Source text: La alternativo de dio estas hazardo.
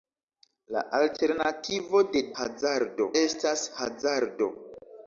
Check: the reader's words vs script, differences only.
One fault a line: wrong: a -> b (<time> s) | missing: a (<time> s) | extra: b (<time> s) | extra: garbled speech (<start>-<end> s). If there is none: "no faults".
wrong: dio -> hazardo (2.4 s)